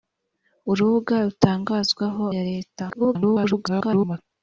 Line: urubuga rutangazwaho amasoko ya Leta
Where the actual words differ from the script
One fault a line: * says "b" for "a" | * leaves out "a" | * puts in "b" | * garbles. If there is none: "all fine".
* leaves out "amasoko"
* garbles